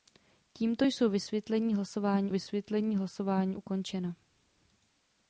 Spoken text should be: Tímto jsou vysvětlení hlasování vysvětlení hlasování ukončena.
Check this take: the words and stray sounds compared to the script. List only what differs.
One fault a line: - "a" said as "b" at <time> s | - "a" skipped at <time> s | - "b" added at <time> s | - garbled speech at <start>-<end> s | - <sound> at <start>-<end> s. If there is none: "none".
none